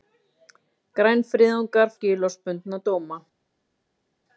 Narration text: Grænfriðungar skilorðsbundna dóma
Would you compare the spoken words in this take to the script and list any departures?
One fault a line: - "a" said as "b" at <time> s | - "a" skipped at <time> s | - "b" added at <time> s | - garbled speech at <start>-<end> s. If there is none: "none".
none